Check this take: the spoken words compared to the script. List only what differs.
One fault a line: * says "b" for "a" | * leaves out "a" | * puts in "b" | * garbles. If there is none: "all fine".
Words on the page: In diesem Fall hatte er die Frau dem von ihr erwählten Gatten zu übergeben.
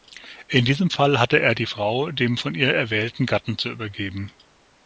all fine